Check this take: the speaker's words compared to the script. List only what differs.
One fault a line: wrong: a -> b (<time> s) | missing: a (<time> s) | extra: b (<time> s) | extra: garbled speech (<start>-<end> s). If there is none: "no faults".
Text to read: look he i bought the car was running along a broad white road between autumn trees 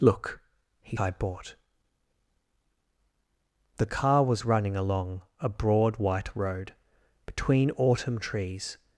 no faults